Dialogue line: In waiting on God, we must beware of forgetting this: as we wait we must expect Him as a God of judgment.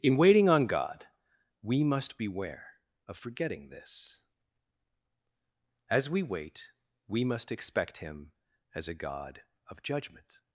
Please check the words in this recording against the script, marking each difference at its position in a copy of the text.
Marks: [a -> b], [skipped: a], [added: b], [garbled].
In waiting on God, we must beware of forgetting this: as we wait we must expect Him as a God of judgment.